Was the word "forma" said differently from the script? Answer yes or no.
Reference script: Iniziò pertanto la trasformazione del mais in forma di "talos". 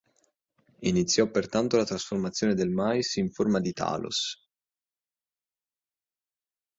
no